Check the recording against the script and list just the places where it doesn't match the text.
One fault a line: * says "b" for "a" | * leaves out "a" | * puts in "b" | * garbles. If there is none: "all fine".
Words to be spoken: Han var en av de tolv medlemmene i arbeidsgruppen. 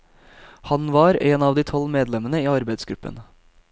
all fine